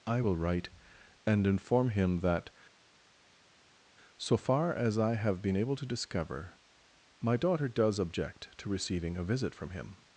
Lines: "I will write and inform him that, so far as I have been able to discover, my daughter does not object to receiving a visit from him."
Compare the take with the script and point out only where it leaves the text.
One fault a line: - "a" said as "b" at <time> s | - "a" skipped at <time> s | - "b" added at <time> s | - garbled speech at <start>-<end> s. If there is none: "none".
- "not" skipped at 8.0 s